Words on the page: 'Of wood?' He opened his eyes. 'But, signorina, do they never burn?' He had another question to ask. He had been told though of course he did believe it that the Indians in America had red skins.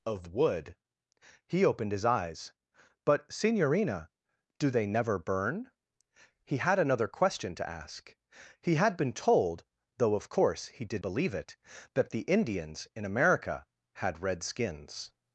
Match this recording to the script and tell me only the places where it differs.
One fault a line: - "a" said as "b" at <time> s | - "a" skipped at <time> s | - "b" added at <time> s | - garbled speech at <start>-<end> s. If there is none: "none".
none